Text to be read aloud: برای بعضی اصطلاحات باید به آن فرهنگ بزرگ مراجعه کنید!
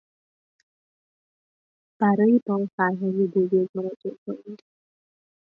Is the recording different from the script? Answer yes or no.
yes